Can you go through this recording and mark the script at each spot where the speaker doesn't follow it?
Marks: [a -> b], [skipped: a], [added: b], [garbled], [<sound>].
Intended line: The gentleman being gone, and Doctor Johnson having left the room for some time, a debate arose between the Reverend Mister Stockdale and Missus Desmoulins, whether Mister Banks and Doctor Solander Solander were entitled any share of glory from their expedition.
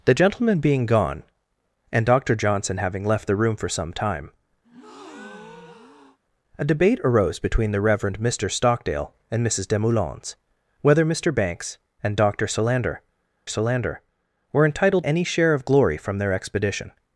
The gentleman being gone, and Doctor Johnson having left the room for some time, [breath] a debate arose between the Reverend Mister Stockdale and Missus Desmoulins, whether Mister Banks and Doctor Solander Solander were entitled any share of glory from their expedition.